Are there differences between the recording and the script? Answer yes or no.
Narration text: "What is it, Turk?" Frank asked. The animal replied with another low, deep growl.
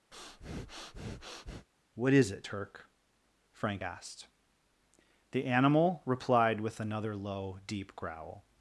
no